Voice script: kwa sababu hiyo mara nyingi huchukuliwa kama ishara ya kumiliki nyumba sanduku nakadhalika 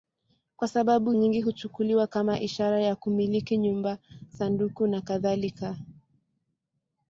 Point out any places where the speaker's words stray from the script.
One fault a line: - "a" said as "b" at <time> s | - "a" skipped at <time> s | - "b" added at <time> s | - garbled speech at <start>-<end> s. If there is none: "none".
- "hiyo mara" skipped at 1.1 s